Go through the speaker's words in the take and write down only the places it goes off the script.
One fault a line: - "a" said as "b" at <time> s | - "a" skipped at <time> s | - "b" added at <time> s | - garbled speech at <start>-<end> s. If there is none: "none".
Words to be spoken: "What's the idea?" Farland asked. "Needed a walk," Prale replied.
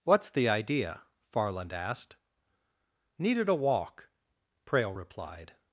none